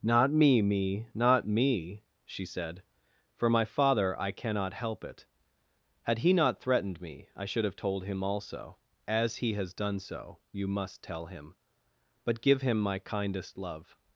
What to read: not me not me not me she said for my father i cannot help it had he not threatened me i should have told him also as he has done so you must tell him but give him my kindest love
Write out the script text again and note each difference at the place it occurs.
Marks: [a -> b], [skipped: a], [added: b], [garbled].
not me [skipped: not] me not me she said for my father i cannot help it had he not threatened me i should have told him also as he has done so you must tell him but give him my kindest love